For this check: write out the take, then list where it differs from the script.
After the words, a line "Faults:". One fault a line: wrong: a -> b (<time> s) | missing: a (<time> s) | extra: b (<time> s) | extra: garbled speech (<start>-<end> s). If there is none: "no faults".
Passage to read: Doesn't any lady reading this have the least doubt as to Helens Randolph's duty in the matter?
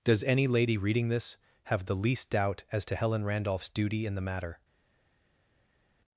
Does any lady reading this have the least doubt as to Helen Randolph's duty in the matter?
Faults:
wrong: Doesn't -> Does (0.0 s)
wrong: Helens -> Helen (2.9 s)